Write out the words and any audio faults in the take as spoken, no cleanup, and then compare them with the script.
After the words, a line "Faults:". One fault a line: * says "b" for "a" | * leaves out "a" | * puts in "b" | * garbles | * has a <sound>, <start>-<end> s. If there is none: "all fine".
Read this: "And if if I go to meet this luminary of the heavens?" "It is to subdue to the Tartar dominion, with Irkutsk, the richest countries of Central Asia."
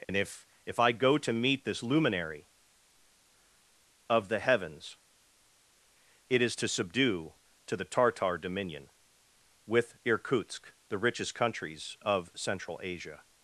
"And if if I go to meet this luminary of the heavens?" "It is to subdue to the Tartar dominion, with Irkutsk, the richest countries of Central Asia."
Faults:
* has a dropout, 0.0-0.1 s